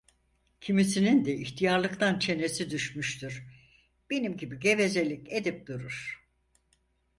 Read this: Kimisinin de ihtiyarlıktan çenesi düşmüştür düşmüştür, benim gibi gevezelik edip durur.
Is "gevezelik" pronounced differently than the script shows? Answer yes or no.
no